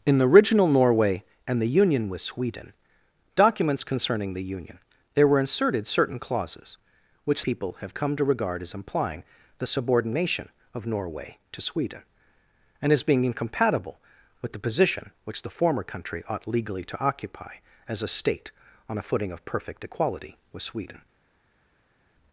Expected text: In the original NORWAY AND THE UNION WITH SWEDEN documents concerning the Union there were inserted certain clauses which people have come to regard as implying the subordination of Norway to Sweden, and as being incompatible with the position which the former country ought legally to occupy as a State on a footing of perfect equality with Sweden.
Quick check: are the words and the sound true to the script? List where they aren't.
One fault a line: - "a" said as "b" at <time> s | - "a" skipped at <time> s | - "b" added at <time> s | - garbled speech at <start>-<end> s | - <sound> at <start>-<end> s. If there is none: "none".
none